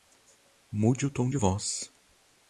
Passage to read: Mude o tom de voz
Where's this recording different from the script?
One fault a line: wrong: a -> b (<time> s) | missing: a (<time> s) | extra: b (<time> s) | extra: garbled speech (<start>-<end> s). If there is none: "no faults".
no faults